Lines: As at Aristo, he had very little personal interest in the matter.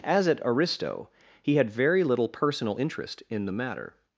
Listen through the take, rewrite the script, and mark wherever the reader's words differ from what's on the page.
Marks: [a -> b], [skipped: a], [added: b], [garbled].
As at Aristo, he had very little personal interest in the matter.